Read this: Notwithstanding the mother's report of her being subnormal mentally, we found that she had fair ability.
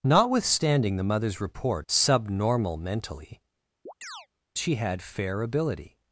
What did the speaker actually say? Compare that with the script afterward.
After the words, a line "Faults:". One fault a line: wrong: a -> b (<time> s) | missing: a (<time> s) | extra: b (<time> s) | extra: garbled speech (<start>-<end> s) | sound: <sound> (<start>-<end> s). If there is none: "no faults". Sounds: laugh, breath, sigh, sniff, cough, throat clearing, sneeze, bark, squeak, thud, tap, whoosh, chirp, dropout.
Notwithstanding the mother's report subnormal mentally, she had fair ability.
Faults:
missing: of her being (1.9 s)
missing: we found that (3.4 s)
sound: chirp (3.9-4.3 s)